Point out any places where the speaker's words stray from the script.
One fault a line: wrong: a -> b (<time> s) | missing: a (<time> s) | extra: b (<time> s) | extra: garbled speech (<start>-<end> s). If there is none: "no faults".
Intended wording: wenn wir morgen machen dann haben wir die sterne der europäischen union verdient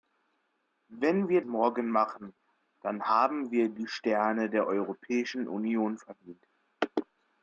no faults